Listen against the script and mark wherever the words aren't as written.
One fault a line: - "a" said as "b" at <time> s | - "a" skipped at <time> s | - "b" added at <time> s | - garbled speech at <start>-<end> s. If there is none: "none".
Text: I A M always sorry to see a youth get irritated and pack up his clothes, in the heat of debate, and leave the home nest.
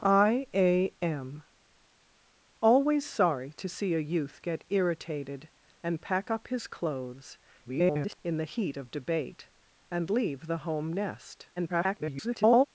- garbled speech at 7.6-8.2 s
- garbled speech at 11.6-12.7 s